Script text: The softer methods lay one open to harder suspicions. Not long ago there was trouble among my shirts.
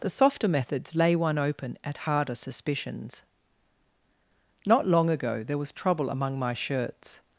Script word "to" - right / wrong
wrong